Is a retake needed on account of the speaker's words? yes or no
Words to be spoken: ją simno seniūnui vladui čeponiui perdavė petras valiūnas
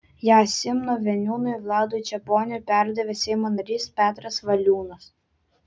yes